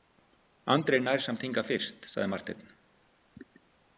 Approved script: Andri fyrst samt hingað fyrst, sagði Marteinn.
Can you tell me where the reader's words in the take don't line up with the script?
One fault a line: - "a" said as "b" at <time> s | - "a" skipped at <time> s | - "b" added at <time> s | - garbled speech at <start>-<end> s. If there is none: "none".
- "fyrst" said as "nær" at 1.1 s